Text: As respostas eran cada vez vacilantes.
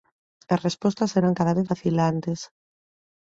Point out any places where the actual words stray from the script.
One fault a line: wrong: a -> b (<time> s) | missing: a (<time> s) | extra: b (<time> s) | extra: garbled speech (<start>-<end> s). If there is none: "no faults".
no faults